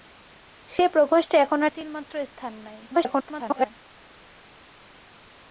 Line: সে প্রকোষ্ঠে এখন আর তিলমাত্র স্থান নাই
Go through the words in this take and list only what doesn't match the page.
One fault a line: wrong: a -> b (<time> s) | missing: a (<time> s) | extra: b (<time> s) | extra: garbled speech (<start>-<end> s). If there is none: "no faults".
extra: garbled speech (2.9-3.7 s)